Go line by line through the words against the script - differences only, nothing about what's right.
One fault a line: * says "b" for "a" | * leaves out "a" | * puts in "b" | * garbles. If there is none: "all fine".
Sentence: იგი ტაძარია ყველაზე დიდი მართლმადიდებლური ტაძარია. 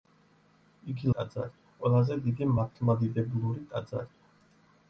all fine